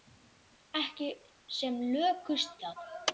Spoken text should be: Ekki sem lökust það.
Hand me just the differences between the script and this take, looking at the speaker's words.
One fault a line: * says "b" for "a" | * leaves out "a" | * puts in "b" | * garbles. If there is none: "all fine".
all fine